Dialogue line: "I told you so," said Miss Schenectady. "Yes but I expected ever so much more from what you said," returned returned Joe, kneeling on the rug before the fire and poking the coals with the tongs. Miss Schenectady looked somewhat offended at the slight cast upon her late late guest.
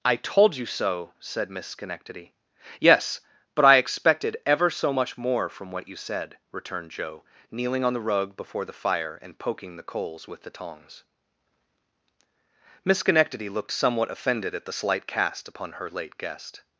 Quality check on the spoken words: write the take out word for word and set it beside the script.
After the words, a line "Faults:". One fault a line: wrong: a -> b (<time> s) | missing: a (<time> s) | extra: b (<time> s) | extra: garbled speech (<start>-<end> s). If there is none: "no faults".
"I told you so," said Miss Schenectady. "Yes but I expected ever so much more from what you said," returned Joe, kneeling on the rug before the fire and poking the coals with the tongs. Miss Schenectady looked somewhat offended at the slight cast upon her late guest.
Faults:
missing: returned (6.9 s)
missing: late (16.2 s)